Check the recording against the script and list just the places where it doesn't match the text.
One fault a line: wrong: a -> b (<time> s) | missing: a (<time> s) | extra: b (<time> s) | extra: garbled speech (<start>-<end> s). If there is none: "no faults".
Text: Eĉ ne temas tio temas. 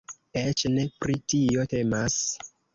wrong: temas -> pri (1.1 s)